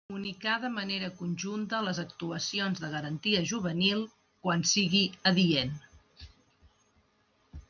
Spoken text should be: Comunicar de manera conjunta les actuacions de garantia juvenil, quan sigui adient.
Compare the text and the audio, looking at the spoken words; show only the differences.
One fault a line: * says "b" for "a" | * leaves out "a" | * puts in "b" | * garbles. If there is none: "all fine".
all fine